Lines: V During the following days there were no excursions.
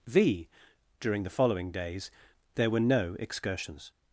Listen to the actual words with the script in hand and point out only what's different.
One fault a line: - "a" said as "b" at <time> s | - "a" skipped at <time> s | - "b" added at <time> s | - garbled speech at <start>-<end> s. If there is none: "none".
none